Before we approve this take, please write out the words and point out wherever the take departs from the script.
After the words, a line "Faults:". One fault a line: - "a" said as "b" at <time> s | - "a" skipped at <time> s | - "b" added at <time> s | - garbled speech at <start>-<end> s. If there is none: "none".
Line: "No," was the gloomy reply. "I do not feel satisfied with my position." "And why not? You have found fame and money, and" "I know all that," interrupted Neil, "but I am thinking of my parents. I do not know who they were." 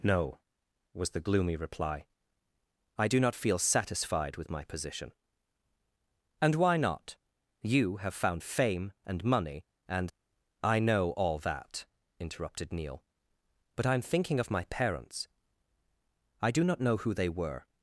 "No," was the gloomy reply. "I do not feel satisfied with my position." "And why not? You have found fame and money, and" "I know all that," interrupted Neil, "but I am thinking of my parents. I do not know who they were."
Faults:
none